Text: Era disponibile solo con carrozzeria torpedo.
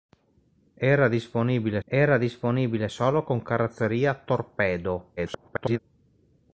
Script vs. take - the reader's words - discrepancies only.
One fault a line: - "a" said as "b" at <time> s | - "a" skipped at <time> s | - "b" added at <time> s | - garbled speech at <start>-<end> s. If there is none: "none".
- "era disponibile" added at 1.9 s
- garbled speech at 5.2-5.8 s